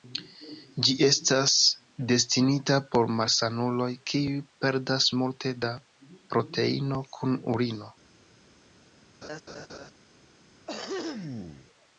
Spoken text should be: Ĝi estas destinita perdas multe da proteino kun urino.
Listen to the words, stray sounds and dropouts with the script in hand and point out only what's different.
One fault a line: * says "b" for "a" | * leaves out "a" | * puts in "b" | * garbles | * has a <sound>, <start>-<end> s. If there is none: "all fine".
* puts in "por malsanuloj kiuj"
* has a laugh, 9.2-9.9 s
* has a throat clearing, 10.7-11.7 s